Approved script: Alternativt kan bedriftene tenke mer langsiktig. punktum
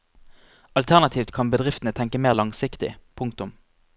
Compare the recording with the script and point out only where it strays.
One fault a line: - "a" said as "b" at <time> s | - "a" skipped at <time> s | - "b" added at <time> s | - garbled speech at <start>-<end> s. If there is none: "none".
none